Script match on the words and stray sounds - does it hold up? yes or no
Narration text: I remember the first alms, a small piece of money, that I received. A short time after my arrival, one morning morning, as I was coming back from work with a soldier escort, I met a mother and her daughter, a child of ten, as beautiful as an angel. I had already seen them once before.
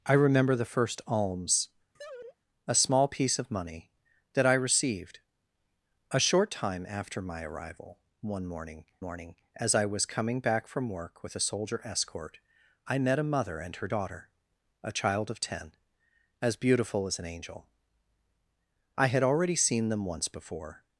no